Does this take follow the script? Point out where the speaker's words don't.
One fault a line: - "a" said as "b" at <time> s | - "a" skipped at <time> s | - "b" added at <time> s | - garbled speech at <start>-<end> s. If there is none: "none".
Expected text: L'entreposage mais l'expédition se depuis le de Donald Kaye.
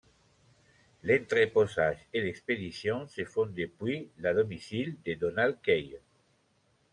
- "mais" said as "et" at 2.1 s
- "font" added at 3.2 s
- "domicile" added at 4.3 s